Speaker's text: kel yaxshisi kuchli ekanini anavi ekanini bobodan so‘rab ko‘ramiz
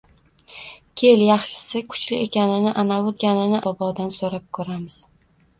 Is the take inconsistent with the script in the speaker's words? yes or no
no